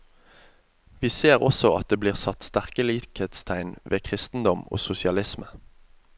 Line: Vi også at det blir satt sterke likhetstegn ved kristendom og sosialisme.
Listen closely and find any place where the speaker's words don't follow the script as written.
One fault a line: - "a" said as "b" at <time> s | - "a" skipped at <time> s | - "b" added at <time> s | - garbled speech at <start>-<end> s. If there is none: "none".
- "ser" added at 1.1 s